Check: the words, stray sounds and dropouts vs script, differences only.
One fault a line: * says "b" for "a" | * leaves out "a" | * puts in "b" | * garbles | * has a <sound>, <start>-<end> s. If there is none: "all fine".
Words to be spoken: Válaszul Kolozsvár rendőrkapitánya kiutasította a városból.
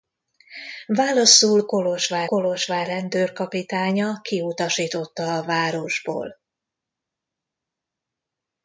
* puts in "Kolozsvár"